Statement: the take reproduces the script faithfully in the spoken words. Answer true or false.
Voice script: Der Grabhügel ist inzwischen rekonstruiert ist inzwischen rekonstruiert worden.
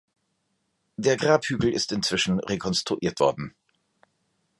false